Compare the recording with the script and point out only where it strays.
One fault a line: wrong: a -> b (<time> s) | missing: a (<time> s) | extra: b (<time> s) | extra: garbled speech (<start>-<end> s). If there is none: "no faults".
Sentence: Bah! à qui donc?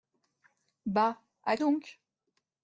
missing: qui (1.6 s)